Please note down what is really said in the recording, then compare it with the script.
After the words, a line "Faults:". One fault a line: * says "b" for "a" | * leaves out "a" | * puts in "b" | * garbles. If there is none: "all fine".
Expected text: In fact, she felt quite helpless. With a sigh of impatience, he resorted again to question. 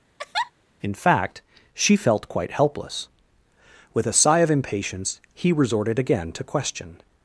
In fact, she felt quite helpless. With a sigh of impatience, he resorted again to question.
Faults:
all fine